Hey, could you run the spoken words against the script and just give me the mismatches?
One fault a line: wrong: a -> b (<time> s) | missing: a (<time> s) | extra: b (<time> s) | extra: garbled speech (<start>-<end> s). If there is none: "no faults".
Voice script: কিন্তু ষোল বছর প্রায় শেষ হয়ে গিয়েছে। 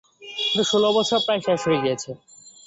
no faults